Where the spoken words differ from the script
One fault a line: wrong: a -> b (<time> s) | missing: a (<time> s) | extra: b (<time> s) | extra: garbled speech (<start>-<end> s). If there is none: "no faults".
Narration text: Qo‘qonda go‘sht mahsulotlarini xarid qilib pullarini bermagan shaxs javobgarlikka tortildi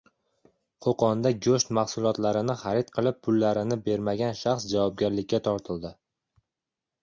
no faults